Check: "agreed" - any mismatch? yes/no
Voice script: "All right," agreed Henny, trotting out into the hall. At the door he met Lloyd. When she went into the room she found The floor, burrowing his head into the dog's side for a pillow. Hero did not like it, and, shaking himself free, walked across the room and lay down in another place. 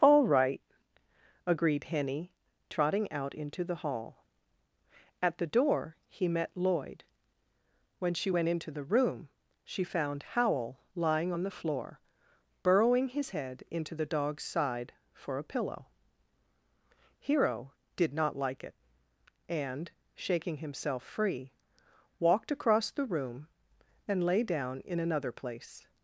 no